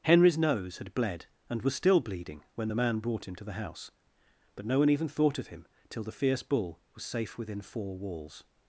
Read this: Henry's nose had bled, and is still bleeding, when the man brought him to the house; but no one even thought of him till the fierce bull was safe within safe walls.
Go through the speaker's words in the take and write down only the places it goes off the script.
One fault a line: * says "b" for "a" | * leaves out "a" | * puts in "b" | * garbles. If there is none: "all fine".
* says "was" for "is"
* says "four" for "safe"